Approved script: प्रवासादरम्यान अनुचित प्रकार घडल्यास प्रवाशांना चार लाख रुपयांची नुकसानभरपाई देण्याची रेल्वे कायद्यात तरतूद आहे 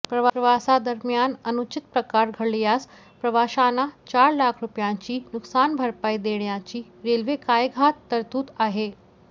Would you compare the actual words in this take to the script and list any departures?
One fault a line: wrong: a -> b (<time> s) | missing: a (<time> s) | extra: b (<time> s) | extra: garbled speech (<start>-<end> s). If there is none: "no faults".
no faults